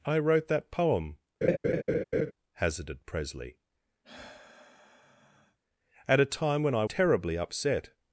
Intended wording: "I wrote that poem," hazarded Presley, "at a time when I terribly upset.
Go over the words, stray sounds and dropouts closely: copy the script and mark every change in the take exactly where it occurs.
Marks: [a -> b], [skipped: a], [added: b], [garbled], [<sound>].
"I wrote that poem," [laugh] hazarded Presley, [sigh] "at a time when I terribly upset.